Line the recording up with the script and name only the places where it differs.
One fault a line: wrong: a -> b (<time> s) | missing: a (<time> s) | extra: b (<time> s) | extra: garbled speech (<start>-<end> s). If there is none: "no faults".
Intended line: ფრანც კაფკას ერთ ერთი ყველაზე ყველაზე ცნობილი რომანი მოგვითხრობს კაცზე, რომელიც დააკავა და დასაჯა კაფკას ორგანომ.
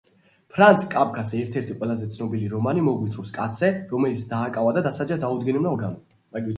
missing: ყველაზე (2.1 s)
wrong: კაფკას -> დაუდგენელმა (5.3 s)